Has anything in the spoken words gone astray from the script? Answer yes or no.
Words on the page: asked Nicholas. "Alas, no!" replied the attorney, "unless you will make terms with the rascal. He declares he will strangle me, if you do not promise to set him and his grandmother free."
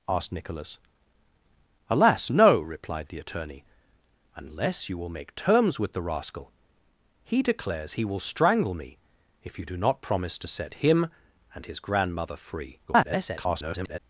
yes